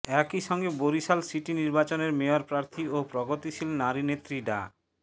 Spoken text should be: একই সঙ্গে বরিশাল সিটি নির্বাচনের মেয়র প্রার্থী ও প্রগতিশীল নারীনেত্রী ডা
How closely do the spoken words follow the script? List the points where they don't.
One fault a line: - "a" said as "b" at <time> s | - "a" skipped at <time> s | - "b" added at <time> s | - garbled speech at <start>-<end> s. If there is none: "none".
none